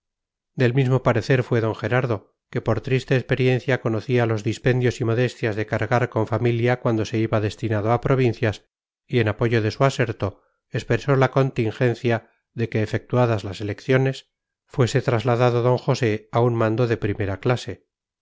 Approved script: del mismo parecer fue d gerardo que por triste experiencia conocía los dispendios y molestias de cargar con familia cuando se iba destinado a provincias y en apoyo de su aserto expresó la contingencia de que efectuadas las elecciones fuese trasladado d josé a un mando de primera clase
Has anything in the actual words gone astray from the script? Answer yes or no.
no